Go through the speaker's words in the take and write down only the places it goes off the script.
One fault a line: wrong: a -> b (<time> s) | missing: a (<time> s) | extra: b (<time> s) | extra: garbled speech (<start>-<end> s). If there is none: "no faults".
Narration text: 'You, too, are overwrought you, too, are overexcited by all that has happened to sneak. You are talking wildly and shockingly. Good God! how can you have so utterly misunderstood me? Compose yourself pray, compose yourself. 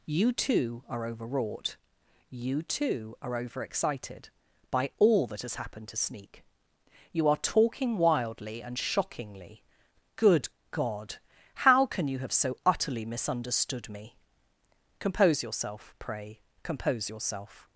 no faults